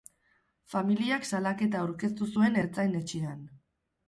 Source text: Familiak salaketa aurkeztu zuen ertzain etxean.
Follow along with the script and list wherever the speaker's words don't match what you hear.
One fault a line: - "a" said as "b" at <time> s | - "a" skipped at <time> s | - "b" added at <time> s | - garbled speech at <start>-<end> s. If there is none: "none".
none